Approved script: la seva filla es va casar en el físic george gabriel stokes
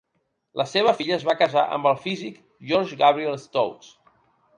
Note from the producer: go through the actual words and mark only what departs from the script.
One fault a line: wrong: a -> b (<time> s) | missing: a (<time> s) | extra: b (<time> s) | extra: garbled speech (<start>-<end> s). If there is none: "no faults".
wrong: en -> amb (1.8 s)